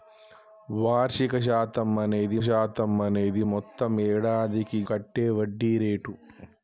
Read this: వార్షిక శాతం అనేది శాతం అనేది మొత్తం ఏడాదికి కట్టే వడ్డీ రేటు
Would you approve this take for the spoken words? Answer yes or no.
yes